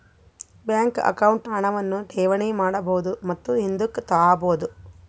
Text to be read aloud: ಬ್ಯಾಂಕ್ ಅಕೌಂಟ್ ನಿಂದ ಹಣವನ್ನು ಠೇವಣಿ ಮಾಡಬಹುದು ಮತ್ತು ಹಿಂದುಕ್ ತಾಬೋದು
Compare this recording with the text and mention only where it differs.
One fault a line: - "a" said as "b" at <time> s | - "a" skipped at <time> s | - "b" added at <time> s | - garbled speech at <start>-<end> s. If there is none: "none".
- "ನಿಂದ" skipped at 1.5 s